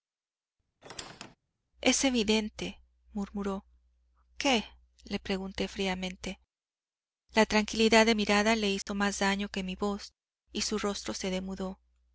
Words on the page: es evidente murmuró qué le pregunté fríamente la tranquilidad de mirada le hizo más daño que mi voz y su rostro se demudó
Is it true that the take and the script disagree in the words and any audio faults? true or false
true